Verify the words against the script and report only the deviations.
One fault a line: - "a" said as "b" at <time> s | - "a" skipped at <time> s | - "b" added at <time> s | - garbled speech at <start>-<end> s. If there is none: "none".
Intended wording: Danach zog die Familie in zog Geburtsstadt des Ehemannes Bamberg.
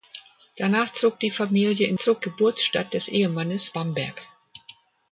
none